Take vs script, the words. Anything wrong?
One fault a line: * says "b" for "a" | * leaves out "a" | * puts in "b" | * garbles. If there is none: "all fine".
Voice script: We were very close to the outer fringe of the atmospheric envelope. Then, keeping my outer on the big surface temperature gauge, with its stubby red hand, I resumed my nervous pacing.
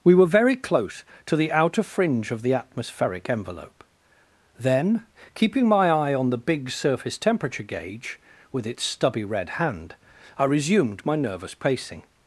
* says "eye" for "outer"